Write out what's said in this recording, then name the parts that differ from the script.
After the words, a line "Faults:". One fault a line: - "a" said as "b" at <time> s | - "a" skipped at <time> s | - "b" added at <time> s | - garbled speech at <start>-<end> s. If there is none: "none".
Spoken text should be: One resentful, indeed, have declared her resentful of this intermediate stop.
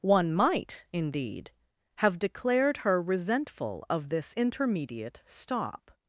One might, indeed, have declared her resentful of this intermediate stop.
Faults:
- "resentful" said as "might" at 0.3 s